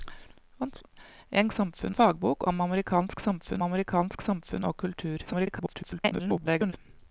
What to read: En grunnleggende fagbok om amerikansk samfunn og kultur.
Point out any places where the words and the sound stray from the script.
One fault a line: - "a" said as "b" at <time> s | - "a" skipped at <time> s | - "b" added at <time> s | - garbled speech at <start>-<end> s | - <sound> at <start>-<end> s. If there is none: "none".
- "grunnleggende" said as "samfunn" at 1.5 s
- "amerikansk samfunn" added at 3.6 s
- garbled speech at 5.2-6.7 s